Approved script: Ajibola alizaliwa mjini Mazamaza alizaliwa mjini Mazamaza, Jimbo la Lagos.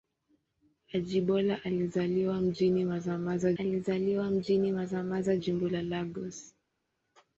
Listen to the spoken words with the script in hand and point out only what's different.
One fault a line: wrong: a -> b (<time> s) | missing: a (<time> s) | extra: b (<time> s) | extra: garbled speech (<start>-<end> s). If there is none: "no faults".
no faults